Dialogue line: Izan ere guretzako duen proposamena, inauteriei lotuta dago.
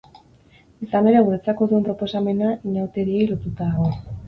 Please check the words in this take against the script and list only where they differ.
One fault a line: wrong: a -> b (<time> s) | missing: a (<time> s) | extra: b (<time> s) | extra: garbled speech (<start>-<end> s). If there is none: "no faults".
no faults